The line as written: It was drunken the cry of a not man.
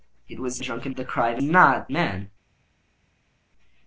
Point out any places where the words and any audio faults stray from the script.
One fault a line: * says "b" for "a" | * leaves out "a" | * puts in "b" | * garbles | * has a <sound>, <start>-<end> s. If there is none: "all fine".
all fine